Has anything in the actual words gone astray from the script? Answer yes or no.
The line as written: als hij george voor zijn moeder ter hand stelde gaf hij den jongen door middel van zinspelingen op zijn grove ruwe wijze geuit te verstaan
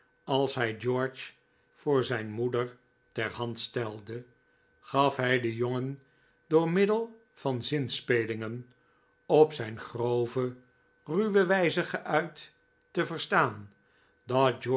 no